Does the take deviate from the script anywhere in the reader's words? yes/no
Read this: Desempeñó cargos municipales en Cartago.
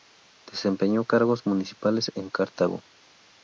no